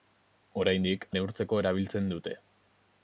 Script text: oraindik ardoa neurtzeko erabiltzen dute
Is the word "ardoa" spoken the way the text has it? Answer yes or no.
no